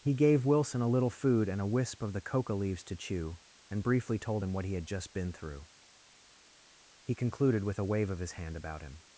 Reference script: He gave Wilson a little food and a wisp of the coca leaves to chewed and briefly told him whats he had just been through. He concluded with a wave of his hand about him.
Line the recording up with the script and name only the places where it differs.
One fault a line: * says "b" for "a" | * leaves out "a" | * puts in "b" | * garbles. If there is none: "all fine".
* says "chew" for "chewed"
* says "what" for "whats"